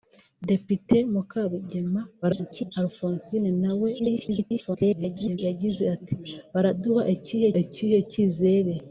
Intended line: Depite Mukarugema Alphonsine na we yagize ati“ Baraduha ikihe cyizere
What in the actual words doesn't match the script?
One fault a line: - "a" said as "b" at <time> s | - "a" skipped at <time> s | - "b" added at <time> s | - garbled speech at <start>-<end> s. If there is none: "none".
- garbled speech at 2.2-2.7 s
- garbled speech at 4.0-5.4 s
- "ikihe" added at 7.6 s